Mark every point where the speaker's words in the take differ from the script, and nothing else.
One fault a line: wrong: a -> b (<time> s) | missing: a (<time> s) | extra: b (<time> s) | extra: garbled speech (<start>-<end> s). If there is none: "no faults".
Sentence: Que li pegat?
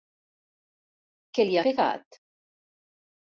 no faults